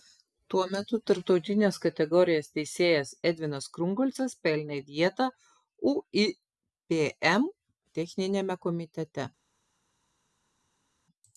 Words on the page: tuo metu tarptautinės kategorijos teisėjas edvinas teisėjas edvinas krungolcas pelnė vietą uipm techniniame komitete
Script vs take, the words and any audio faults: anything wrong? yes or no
yes